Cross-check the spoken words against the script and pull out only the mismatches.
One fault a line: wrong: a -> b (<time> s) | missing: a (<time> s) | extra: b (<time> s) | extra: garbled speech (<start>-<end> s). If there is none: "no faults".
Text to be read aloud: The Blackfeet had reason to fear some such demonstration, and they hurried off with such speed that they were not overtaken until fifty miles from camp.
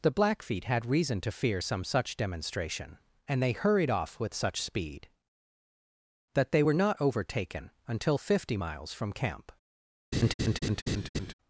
no faults